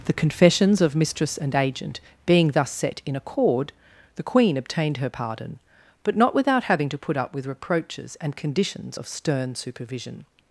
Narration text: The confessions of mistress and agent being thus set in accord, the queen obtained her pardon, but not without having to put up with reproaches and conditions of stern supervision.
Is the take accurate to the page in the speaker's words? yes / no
yes